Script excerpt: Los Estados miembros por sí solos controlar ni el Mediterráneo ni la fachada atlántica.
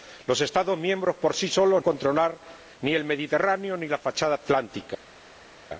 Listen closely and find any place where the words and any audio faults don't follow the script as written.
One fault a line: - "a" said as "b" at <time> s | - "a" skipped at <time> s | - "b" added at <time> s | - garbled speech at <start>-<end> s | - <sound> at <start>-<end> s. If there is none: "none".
none